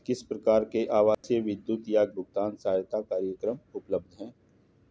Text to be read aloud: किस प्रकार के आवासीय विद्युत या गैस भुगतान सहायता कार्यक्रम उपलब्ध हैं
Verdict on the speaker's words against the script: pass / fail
fail